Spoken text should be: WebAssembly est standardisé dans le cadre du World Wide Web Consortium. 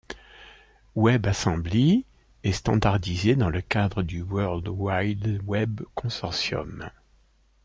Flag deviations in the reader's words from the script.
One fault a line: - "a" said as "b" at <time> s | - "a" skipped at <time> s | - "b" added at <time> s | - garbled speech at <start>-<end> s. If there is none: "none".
none